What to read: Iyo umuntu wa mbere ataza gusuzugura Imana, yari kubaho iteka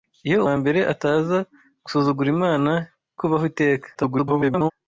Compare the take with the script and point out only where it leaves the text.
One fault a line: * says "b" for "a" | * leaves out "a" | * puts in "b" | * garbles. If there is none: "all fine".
* leaves out "umuntu"
* leaves out "yari"
* garbles